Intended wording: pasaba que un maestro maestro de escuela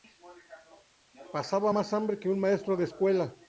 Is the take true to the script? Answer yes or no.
no